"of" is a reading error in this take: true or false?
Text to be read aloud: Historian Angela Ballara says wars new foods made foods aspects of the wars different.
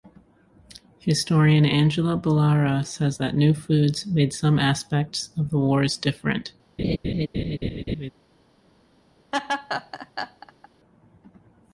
false